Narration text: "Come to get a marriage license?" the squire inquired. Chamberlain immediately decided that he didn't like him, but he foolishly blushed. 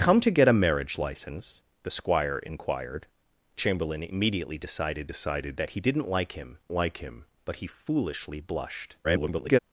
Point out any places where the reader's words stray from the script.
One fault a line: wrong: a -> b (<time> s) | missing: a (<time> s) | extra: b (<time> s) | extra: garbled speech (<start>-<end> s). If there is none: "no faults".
extra: decided (5.0 s)
extra: like him (6.7 s)
extra: garbled speech (9.0-9.6 s)